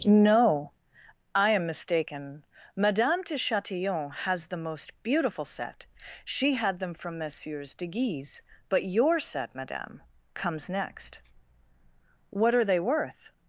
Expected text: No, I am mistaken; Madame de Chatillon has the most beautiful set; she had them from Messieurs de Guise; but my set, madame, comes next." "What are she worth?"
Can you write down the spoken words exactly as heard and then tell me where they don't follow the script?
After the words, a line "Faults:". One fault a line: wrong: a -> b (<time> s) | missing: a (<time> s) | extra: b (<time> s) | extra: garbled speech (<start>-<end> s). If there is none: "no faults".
No, I am mistaken; Madame de Chatillon has the most beautiful set; she had them from Messieurs de Guise; but your set, madame, comes next." "What are they worth?"
Faults:
wrong: my -> your (8.8 s)
wrong: she -> they (12.6 s)